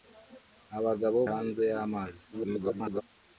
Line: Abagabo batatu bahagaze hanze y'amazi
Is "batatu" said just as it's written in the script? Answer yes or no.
no